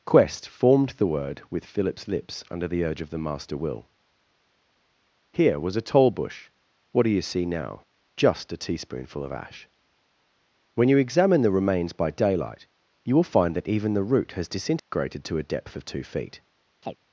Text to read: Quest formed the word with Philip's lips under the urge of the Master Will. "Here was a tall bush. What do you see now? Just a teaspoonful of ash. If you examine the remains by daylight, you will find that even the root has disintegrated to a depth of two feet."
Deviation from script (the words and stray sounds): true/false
true